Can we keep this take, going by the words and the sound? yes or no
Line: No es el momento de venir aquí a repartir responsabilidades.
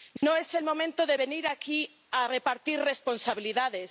no